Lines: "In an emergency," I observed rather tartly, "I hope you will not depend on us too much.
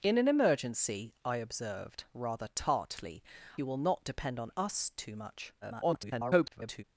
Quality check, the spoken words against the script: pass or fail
fail